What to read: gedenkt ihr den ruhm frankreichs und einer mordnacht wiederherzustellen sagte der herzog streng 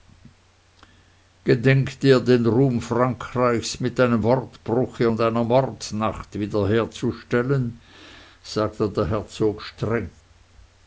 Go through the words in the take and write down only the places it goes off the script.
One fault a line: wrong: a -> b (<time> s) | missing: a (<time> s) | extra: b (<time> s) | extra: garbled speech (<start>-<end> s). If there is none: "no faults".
extra: mit einem wortbruche (3.8 s)